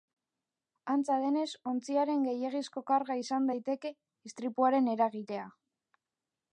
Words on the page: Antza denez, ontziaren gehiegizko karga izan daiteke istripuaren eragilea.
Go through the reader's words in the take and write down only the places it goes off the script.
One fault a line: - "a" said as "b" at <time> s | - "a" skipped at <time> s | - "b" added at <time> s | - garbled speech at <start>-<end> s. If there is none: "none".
none